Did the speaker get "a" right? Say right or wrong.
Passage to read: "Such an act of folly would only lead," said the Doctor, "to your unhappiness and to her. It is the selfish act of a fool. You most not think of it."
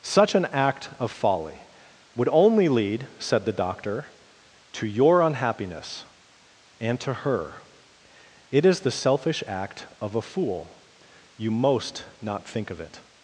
right